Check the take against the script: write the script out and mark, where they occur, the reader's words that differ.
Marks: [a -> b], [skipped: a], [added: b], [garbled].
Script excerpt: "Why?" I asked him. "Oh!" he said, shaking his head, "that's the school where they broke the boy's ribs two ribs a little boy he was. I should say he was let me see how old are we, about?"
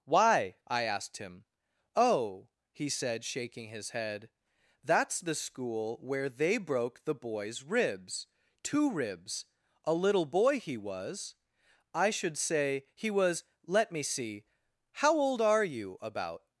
"Why?" I asked him. "Oh!" he said, shaking his head, "that's the school where they broke the boy's ribs two ribs a little boy he was. I should say he was let me see how old are [we, -> you] about?"